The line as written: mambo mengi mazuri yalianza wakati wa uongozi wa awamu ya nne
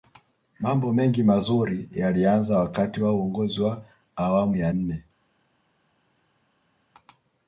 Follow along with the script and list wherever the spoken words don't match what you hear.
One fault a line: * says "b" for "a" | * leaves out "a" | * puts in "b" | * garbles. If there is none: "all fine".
all fine